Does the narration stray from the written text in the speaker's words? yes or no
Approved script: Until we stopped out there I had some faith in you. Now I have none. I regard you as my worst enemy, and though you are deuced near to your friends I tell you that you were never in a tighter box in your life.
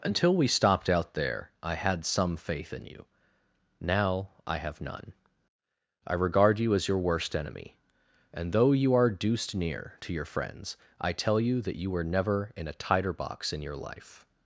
yes